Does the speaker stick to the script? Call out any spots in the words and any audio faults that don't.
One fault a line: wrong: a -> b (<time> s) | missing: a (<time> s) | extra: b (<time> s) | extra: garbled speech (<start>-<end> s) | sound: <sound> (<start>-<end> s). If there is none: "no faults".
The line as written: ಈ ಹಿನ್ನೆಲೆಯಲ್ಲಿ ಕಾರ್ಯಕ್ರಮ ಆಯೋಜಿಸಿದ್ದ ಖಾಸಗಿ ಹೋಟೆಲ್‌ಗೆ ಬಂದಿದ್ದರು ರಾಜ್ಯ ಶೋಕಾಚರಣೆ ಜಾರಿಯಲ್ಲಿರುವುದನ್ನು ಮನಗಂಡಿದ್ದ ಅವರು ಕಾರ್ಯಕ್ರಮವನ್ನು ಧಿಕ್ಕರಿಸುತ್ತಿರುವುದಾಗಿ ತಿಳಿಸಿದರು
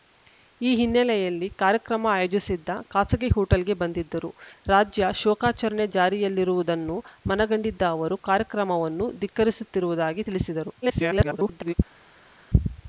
extra: garbled speech (10.8-11.7 s)